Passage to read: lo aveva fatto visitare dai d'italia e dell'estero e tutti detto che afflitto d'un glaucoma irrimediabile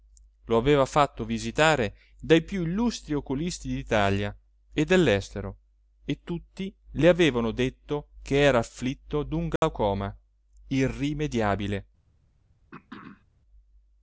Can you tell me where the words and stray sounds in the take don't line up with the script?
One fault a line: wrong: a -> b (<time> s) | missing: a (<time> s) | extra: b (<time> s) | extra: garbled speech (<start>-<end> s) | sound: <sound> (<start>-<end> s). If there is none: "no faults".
extra: più illustri oculisti (2.4 s)
extra: le avevano (6.9 s)
extra: era (8.4 s)
sound: dropout (9.6-9.6 s)
sound: throat clearing (12.7-13.2 s)